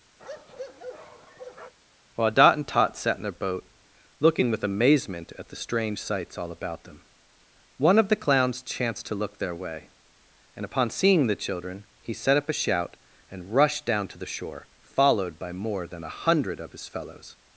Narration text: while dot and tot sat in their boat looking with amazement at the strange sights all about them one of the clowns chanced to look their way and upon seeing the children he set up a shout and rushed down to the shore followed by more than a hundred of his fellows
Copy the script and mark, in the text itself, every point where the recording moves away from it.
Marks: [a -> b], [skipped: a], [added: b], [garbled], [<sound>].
[bark] while dot and tot sat in their boat looking with amazement at the strange sights all about them one of the clowns chanced to look their way and upon seeing the children he set up a shout and rushed down to the shore followed by more than a hundred of his fellows